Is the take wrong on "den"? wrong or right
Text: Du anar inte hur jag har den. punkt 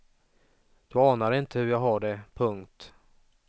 wrong